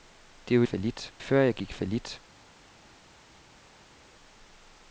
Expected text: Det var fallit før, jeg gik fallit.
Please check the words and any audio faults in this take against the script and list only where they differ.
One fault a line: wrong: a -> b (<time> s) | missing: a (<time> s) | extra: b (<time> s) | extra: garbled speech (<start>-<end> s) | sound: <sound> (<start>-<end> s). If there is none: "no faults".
no faults